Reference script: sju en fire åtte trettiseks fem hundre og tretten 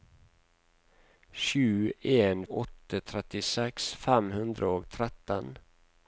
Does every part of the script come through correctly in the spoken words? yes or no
no